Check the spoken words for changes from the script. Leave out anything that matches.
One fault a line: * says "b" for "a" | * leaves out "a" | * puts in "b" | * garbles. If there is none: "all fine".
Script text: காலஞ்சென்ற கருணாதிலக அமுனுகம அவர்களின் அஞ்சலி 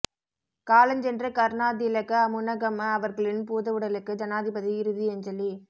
* puts in "பூதவுடலுக்கு ஜனாதிபதி இறுதி"